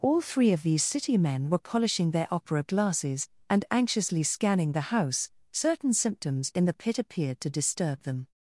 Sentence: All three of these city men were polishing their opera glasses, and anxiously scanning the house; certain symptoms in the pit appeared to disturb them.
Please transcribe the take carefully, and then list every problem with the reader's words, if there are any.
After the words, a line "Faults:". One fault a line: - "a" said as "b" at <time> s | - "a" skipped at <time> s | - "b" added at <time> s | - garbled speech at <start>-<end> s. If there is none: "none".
All three of these city men were polishing their opera glasses, and anxiously scanning the house; certain symptoms in the pit appeared to disturb them.
Faults:
none